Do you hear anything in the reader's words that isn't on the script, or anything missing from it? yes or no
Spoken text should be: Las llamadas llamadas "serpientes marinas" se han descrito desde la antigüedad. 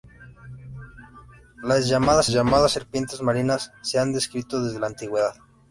no